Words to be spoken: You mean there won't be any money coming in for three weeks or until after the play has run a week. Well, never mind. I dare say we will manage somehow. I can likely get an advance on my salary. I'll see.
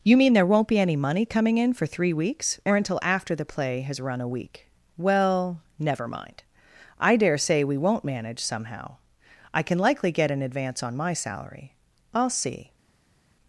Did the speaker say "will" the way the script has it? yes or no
no